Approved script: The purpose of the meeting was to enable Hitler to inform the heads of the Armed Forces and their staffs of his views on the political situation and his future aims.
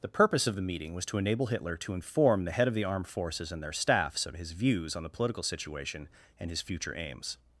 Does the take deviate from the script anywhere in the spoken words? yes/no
yes